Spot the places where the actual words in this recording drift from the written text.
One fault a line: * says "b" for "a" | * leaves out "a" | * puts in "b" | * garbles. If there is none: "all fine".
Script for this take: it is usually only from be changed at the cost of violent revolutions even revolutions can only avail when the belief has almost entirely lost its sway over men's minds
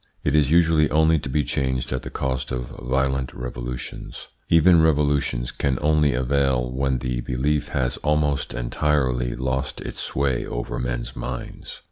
* says "to" for "from"